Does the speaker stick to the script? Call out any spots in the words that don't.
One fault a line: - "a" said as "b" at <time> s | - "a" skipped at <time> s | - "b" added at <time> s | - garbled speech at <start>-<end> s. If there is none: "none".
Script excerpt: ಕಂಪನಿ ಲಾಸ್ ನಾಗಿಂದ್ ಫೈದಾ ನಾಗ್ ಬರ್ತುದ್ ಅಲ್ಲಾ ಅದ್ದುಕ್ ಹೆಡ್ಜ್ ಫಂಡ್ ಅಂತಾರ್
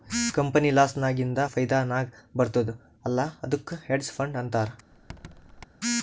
none